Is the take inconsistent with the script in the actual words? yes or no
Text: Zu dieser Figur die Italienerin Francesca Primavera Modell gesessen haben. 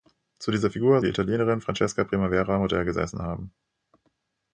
no